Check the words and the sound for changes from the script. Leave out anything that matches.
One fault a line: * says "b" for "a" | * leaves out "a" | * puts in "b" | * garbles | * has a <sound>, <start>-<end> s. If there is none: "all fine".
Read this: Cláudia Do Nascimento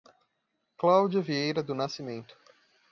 * puts in "Vieira"